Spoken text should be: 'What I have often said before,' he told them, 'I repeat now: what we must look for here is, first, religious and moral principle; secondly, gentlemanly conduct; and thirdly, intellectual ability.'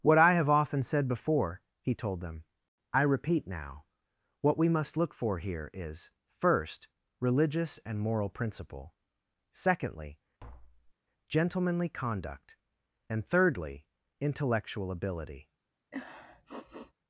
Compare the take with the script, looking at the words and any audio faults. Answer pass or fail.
fail